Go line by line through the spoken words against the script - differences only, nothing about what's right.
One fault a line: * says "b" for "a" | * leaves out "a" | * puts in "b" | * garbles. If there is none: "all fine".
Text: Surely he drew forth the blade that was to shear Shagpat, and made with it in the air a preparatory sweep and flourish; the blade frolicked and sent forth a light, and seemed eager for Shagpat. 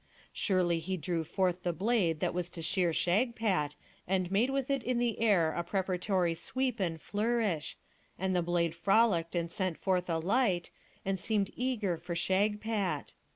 * puts in "and"